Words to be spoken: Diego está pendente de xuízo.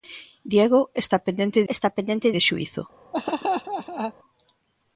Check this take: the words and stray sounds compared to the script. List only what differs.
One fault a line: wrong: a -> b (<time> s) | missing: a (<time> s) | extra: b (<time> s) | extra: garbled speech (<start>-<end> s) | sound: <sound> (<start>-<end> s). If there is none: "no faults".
extra: está pendente (1.7 s)
sound: laugh (3.1-4.1 s)